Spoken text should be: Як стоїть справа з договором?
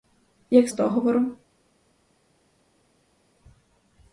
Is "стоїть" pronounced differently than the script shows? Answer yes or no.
yes